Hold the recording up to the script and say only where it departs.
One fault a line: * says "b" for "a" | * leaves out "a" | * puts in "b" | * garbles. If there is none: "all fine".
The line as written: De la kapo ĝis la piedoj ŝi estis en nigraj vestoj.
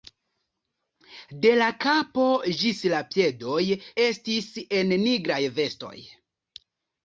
* leaves out "ŝi"